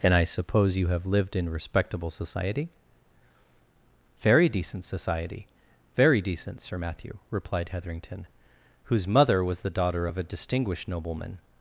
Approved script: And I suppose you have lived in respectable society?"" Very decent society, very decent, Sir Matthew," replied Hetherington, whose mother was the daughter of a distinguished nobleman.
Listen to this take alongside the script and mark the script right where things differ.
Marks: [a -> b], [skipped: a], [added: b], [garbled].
And I suppose you have lived in respectable society?"" Very decent society, very decent, Sir Matthew," replied Hetherington, whose mother was the daughter of a distinguished nobleman.